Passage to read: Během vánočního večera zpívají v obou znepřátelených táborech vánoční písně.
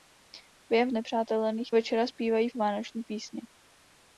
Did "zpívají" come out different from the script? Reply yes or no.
no